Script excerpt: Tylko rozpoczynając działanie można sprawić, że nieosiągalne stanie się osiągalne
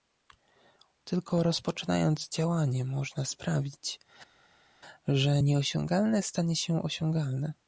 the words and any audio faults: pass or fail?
pass